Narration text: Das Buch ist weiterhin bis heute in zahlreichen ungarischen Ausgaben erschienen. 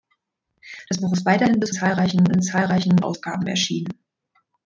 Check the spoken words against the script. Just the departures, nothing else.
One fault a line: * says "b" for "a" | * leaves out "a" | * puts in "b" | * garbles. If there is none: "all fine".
* says "zahlreichen" for "heute"
* leaves out "ungarischen"